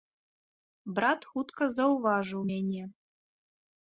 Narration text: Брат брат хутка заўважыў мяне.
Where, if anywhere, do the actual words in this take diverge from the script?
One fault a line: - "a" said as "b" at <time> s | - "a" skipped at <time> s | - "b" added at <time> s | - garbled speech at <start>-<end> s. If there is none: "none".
- "брат" skipped at 1.3 s